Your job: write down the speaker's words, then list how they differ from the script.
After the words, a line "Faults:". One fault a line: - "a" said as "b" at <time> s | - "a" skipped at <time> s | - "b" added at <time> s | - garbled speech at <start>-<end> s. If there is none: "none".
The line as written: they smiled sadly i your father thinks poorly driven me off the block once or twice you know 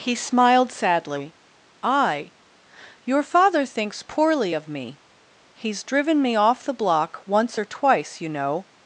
he smiled sadly i your father thinks poorly of me he's driven me off the block once or twice you know
Faults:
- "they" said as "he" at 0.0 s
- "of me he's" added at 4.5 s